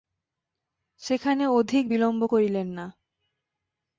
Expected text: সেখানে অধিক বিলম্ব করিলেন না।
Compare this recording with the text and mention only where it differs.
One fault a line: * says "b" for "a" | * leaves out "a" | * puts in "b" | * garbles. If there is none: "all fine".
all fine